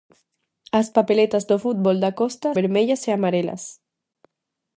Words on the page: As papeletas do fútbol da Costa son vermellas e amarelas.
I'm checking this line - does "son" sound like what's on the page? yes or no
no